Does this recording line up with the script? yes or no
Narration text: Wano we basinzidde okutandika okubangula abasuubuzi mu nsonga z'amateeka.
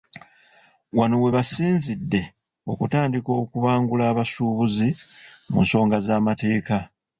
yes